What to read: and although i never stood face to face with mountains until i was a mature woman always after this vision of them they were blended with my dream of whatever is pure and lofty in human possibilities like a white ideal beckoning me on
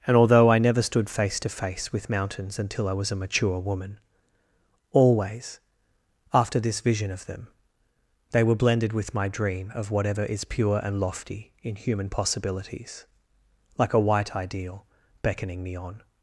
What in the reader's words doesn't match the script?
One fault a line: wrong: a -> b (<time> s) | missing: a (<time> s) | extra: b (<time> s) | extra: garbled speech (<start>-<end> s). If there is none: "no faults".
no faults